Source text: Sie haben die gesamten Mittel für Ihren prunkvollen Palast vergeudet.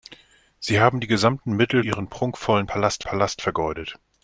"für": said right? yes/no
no